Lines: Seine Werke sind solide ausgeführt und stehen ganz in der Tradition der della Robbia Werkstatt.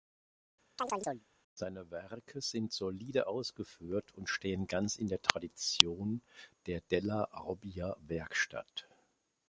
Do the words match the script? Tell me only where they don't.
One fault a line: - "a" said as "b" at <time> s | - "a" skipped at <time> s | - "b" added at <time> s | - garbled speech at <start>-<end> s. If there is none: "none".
none